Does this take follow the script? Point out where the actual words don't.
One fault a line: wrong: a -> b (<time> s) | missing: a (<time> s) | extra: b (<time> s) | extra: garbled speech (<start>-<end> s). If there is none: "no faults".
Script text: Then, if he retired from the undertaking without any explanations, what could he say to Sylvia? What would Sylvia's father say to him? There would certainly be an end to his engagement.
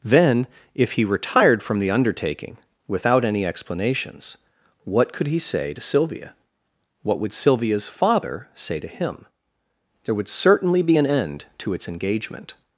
wrong: his -> its (11.7 s)